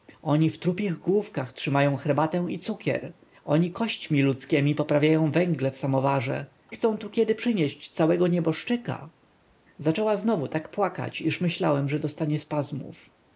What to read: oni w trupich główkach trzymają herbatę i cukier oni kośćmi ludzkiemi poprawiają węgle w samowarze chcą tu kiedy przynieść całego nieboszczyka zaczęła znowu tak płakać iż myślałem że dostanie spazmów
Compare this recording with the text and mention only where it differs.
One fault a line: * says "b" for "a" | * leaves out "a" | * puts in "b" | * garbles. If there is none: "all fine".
all fine